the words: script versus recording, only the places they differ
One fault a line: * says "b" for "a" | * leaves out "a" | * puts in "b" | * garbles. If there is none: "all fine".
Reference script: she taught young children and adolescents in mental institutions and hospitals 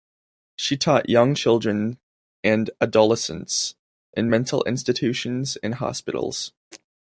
all fine